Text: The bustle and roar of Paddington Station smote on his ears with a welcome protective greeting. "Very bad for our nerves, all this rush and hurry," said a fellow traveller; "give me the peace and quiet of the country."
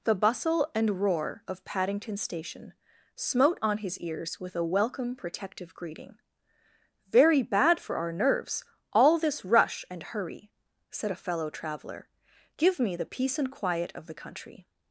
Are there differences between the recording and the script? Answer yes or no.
no